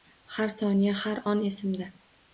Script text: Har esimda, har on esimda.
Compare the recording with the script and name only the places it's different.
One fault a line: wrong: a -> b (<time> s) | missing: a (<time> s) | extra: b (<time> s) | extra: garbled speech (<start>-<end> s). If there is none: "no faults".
wrong: esimda -> soniya (0.6 s)